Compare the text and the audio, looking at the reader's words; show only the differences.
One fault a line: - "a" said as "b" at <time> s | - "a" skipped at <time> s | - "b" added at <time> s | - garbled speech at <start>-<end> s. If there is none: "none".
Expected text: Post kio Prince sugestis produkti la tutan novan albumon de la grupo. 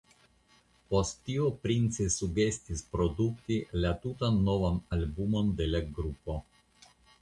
- "kio" said as "tio" at 1.3 s